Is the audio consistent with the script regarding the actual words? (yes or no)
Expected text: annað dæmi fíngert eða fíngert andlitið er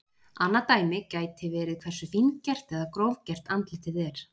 no